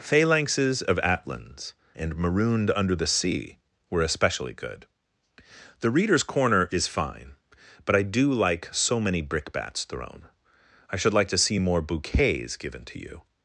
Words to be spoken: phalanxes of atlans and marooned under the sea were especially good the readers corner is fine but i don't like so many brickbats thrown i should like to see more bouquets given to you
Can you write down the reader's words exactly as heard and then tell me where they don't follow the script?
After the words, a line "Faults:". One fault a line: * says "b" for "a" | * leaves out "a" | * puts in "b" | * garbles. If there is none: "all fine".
phalanxes of atlans and marooned under the sea were especially good the readers corner is fine but i do like so many brickbats thrown i should like to see more bouquets given to you
Faults:
* says "do" for "don't"